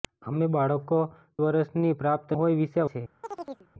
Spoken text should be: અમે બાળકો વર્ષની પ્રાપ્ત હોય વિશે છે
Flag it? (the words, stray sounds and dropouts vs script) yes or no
yes